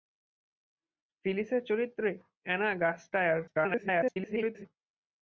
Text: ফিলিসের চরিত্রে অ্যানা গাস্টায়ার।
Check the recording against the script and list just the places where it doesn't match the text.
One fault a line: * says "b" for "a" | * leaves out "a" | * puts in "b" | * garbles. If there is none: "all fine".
* garbles